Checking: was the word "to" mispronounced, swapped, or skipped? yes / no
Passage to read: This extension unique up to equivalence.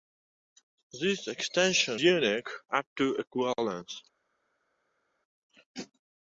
no